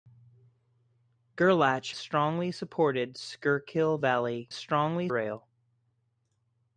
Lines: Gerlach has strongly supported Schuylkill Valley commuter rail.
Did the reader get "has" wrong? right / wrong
wrong